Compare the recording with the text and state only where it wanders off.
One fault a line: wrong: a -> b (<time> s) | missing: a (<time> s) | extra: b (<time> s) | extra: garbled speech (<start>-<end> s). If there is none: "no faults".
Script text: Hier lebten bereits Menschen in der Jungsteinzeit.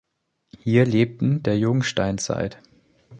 missing: bereits Menschen in (1.4 s)